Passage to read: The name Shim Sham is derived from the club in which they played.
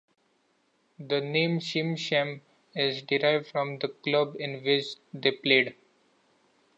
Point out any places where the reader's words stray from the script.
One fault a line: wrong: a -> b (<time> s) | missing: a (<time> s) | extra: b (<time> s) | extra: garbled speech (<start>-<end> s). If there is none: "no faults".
no faults